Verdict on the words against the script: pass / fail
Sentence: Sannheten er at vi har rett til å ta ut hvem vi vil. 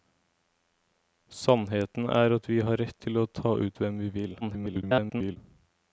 fail